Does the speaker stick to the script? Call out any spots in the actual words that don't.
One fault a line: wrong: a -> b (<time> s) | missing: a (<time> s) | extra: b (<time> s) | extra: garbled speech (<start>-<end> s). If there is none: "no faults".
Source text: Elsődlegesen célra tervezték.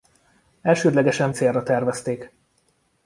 no faults